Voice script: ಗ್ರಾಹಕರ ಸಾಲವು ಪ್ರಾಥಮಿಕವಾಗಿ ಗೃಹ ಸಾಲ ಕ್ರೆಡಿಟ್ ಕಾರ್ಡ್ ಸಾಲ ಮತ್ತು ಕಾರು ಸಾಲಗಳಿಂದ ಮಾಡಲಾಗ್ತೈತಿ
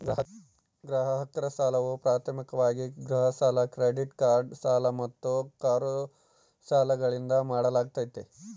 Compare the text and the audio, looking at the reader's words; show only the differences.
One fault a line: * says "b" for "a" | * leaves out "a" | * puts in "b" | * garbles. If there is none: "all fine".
all fine